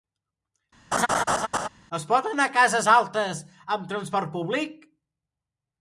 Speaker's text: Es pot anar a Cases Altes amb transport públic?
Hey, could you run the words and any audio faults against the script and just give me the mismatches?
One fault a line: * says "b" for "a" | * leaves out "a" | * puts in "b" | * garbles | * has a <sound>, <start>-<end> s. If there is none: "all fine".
* has a laugh, 0.9-1.7 s